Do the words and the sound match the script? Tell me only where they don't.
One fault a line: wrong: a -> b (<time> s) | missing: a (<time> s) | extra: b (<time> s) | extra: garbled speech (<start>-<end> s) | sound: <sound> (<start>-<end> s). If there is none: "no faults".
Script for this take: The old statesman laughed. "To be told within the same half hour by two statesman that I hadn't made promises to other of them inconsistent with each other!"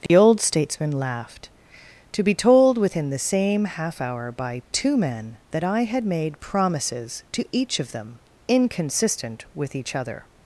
sound: dropout (0.1-0.1 s)
wrong: statesman -> men (5.0 s)
wrong: hadn't -> had (5.8 s)
wrong: other -> each (7.5 s)